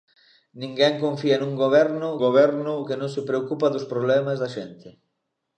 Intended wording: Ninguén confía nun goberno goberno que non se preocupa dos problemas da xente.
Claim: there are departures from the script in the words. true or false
false